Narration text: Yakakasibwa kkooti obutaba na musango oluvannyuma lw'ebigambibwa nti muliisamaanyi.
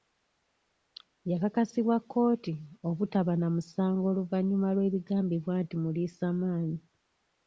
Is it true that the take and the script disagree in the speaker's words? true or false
false